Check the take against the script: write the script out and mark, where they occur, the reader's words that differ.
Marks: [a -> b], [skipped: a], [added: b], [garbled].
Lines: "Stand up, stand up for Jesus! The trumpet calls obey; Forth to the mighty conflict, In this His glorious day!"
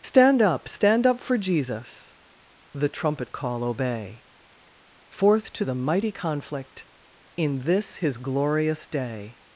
"Stand up, stand up for Jesus! The trumpet [calls -> call] obey; Forth to the mighty conflict, In this His glorious day!"